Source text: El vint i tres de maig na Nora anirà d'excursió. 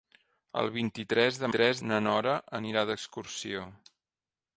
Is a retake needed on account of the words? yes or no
yes